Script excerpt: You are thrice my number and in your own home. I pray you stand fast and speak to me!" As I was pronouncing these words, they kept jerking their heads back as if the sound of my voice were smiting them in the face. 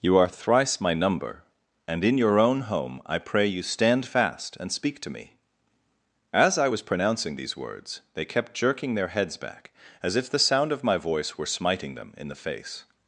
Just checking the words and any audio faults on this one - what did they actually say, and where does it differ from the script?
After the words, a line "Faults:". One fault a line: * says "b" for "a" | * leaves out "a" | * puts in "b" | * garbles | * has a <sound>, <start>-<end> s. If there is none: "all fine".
You are thrice my number and in your own home. I pray you stand fast and speak to me!" As I was pronouncing these words, they kept jerking their heads back as if the sound of my voice were smiting them in the face.
Faults:
all fine